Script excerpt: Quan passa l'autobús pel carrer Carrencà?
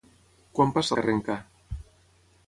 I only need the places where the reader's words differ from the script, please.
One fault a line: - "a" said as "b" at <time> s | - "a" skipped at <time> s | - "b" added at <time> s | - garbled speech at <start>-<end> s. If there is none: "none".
- "l'autobús pel carrer" skipped at 1.0 s